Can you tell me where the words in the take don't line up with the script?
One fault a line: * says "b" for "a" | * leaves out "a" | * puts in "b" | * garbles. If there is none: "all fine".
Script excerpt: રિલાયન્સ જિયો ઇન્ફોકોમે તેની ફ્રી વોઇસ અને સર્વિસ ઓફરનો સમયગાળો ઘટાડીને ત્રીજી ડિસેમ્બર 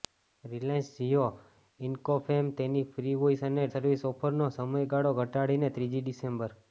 all fine